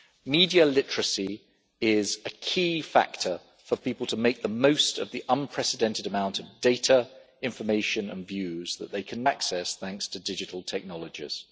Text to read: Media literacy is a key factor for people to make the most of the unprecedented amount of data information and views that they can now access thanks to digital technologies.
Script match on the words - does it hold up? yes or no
no